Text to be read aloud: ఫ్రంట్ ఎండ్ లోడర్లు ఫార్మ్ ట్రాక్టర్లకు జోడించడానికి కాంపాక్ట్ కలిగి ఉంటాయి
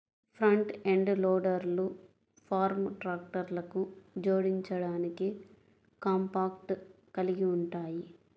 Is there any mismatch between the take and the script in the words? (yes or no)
no